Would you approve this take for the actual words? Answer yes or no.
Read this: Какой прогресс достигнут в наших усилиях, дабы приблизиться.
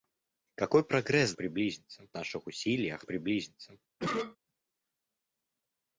no